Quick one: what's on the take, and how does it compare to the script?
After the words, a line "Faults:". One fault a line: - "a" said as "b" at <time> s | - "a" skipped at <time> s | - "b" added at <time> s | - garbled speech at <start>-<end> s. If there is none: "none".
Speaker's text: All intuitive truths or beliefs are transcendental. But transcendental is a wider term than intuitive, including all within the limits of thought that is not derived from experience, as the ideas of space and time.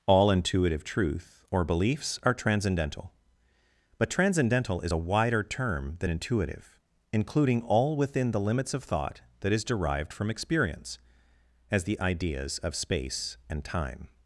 All intuitive truth or beliefs are transcendental. But transcendental is a wider term than intuitive, including all within the limits of thought that is derived from experience, as the ideas of space and time.
Faults:
- "truths" said as "truth" at 0.8 s
- "not" skipped at 9.6 s